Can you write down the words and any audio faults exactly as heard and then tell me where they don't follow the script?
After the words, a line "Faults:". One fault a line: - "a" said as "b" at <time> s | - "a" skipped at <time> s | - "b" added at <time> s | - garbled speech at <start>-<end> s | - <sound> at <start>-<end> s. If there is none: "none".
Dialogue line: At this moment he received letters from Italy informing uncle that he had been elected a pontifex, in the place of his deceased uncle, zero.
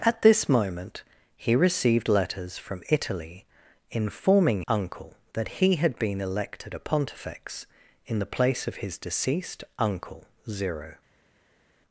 At this moment he received letters from Italy informing uncle that he had been elected a pontifex, in the place of his deceased uncle, zero.
Faults:
none